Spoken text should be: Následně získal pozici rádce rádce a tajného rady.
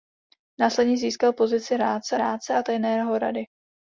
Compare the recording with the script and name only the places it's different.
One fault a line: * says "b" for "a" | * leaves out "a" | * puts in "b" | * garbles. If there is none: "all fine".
all fine